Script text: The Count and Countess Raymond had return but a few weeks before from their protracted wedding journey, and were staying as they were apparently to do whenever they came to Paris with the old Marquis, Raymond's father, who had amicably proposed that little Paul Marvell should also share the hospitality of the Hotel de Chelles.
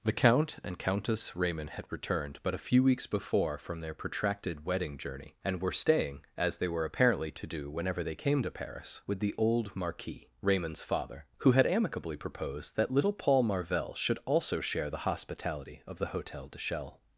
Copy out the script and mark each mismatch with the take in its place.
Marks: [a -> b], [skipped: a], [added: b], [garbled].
The Count and Countess Raymond had [return -> returned] but a few weeks before from their protracted wedding journey, and were staying as they were apparently to do whenever they came to Paris with the old Marquis, Raymond's father, who had amicably proposed that little Paul Marvell should also share the hospitality of the Hotel de Chelles.